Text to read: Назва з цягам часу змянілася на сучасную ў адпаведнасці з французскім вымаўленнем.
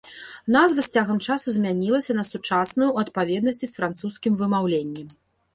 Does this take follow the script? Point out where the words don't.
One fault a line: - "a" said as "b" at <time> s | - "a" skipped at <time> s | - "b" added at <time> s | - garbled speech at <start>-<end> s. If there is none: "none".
none